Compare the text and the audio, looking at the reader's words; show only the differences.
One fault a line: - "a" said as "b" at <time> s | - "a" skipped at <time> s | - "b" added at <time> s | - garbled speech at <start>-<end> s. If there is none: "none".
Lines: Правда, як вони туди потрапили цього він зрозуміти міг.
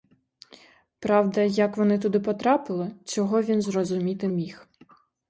none